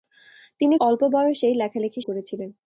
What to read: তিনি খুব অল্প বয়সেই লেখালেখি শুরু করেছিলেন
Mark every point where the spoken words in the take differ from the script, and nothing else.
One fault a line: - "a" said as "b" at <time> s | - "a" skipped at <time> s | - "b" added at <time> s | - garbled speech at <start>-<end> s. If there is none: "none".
- "খুব" skipped at 0.8 s
- "শুরু" skipped at 2.0 s